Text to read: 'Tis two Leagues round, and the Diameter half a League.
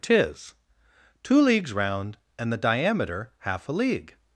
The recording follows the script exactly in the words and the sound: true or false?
true